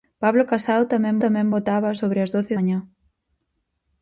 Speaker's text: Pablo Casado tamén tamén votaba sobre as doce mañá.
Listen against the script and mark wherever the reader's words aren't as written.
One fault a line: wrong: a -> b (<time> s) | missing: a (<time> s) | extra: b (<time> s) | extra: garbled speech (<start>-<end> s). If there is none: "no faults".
no faults